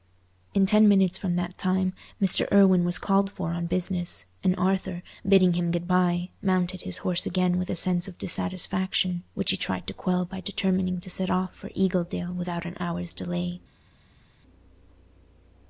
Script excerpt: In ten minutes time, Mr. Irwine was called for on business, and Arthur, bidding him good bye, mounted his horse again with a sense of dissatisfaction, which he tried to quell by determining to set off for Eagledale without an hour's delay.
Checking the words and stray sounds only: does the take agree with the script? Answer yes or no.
no